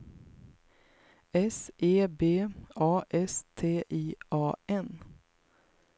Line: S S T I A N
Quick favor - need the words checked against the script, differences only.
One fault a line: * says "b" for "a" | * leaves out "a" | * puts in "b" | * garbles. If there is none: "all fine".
* puts in "E B A"